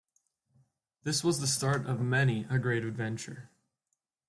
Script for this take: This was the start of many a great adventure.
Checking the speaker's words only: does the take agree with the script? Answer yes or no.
yes